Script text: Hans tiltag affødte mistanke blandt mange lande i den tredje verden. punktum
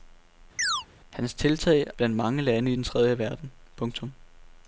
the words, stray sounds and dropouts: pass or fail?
fail